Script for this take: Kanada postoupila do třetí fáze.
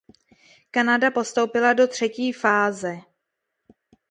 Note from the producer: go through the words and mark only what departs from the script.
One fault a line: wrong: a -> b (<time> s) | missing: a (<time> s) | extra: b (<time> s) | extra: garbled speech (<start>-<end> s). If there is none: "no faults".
no faults